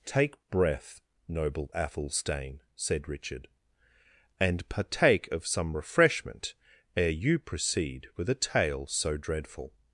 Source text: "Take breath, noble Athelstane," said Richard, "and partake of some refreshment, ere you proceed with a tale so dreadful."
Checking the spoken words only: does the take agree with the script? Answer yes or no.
yes